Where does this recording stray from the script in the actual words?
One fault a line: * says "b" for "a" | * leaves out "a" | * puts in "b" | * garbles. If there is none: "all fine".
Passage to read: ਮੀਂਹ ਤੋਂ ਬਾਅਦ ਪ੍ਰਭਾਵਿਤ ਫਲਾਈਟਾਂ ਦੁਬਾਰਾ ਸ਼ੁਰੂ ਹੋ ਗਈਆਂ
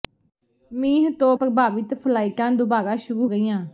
* leaves out "ਬਾਅਦ"
* leaves out "ਹੋ"